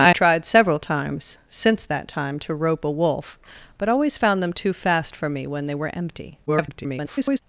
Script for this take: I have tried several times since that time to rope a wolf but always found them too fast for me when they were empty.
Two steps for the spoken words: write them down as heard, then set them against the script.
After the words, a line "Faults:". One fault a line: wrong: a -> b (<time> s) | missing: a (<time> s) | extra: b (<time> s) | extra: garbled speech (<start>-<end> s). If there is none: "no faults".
I tried several times since that time to rope a wolf but always found them too fast for me when they were empty. [garbled]
Faults:
missing: have (0.1 s)
extra: garbled speech (6.5-7.4 s)